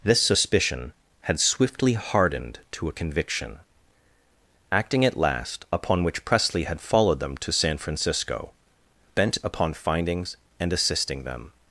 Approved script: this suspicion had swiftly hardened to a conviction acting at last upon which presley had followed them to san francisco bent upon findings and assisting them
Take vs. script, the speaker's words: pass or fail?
pass